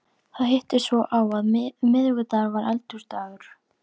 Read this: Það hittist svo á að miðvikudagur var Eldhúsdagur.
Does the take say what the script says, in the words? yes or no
yes